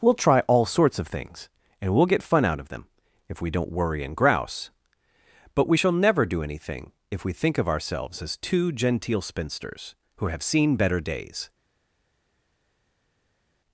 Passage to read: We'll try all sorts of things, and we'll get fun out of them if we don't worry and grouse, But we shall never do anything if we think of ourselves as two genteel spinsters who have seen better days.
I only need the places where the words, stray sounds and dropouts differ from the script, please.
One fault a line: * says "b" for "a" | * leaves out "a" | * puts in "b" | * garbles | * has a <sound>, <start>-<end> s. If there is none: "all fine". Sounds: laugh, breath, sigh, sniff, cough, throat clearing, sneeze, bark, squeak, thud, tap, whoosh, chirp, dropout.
all fine